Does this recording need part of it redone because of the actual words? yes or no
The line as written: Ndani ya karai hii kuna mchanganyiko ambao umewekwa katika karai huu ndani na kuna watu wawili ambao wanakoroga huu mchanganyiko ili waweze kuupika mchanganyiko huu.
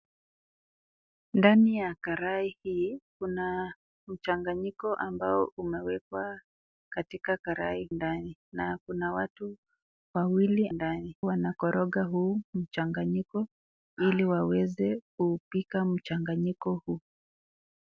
yes